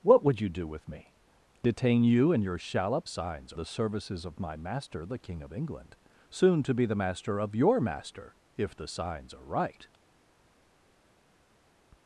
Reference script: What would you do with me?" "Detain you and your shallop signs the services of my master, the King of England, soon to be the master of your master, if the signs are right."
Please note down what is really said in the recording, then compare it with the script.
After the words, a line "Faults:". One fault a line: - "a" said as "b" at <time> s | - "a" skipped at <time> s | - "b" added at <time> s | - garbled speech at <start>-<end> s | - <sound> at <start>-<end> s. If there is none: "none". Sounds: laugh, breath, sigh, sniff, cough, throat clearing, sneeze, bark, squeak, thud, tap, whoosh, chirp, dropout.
What would you do with me?" "Detain you and your shallop signs the services of my master, the King of England, soon to be the master of your master, if the signs are right."
Faults:
none